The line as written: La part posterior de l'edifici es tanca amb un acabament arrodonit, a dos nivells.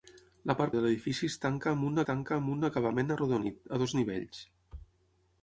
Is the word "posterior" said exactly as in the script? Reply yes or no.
no